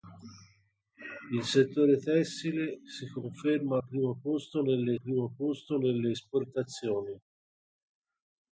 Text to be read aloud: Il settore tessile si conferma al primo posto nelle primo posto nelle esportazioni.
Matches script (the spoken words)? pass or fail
pass